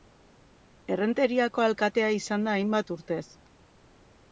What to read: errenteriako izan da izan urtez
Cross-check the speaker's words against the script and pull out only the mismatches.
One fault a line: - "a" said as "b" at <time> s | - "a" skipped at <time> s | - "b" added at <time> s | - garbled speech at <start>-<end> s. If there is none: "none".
- "alkatea" added at 1.7 s
- "izan" said as "hainbat" at 2.6 s